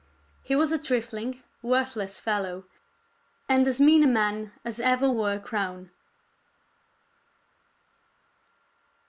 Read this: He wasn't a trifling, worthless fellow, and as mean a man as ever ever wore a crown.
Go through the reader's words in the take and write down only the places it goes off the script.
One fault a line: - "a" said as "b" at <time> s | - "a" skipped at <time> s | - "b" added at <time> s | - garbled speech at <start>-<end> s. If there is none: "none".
- "wasn't" said as "was" at 0.6 s
- "ever" skipped at 5.1 s